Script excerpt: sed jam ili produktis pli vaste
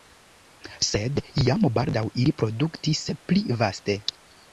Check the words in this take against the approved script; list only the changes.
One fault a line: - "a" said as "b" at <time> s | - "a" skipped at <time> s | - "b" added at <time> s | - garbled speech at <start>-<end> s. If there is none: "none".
- "baldaŭ" added at 1.8 s